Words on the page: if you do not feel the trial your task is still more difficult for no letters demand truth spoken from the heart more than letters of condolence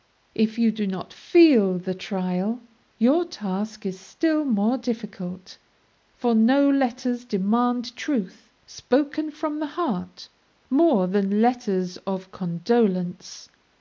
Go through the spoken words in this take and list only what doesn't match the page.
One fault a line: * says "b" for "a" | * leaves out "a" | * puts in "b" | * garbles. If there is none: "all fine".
all fine